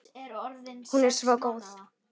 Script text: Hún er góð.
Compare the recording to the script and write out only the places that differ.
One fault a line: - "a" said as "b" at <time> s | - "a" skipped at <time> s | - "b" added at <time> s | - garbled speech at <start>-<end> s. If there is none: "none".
- "svo" added at 1.2 s